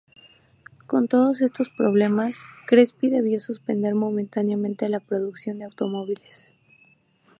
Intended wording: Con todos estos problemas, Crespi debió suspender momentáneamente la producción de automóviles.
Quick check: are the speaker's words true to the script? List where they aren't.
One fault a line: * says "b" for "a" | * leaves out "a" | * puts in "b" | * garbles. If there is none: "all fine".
all fine